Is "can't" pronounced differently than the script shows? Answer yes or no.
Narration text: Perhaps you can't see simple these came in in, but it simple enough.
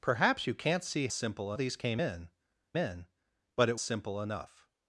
no